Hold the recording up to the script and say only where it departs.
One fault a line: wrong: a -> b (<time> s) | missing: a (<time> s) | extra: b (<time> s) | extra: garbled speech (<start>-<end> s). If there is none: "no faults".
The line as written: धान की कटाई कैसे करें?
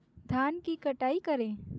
missing: कैसे (1.2 s)